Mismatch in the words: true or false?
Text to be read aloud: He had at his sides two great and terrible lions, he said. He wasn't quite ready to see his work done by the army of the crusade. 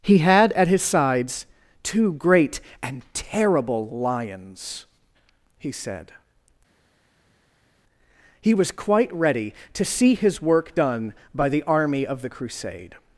true